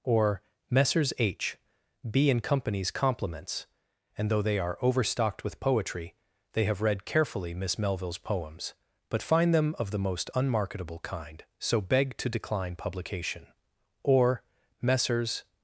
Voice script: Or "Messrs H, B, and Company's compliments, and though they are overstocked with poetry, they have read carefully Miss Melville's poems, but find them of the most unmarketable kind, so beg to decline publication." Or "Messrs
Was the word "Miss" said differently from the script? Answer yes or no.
no